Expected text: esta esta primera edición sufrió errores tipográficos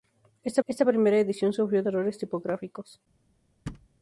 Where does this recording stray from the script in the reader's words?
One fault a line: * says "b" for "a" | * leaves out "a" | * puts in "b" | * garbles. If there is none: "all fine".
all fine